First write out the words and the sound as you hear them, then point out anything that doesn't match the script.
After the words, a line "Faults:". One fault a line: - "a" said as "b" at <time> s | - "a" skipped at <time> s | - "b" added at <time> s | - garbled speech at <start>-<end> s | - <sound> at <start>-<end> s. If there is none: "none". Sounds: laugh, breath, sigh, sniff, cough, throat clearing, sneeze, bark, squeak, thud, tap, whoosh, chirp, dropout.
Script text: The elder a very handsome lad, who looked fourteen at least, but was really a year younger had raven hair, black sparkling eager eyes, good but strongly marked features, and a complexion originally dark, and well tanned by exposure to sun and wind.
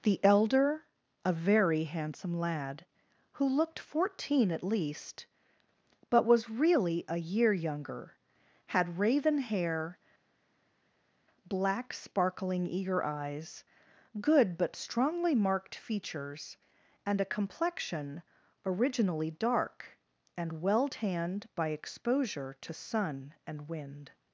The elder a very handsome lad, who looked fourteen at least, but was really a year younger had raven hair, black sparkling eager eyes, good but strongly marked features, and a complexion originally dark, and well tanned by exposure to sun and wind.
Faults:
none